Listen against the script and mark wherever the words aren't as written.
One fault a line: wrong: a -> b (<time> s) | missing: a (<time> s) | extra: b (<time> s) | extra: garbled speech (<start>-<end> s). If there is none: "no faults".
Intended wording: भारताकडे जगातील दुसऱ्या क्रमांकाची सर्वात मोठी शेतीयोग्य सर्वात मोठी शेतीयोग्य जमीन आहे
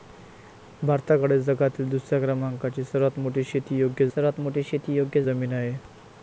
no faults